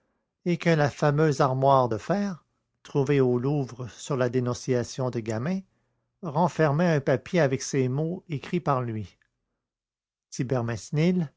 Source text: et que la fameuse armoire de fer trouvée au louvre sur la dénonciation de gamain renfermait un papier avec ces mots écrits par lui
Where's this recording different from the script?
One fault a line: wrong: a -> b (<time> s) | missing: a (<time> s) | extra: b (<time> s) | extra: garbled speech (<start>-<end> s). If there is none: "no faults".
no faults